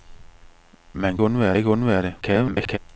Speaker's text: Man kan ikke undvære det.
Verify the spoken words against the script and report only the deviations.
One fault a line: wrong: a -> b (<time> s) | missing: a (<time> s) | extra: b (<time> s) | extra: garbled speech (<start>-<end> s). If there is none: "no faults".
wrong: kan -> undvære (1.2 s)
extra: garbled speech (2.2-2.8 s)